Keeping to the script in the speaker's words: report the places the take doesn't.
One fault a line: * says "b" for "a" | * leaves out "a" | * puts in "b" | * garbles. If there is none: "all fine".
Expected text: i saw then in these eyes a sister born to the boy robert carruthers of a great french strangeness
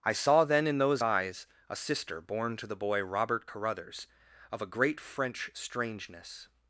* says "those" for "these"